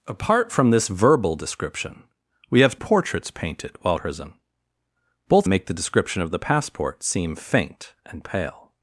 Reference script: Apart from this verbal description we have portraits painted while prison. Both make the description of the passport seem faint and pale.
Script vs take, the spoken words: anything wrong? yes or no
no